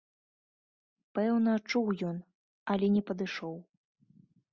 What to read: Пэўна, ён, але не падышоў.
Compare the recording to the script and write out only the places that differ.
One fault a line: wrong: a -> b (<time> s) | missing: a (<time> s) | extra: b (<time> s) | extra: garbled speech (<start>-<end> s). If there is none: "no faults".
extra: чуў (1.7 s)